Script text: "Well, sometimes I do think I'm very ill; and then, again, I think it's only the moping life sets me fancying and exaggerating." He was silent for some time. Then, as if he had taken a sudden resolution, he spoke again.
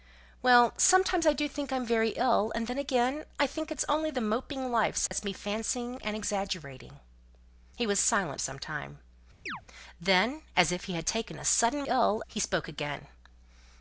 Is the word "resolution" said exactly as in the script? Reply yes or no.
no